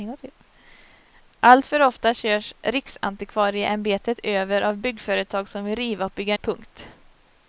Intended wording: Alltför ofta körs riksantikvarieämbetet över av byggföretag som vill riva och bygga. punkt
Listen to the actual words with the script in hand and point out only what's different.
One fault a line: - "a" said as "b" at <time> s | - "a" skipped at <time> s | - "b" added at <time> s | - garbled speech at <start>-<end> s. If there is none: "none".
none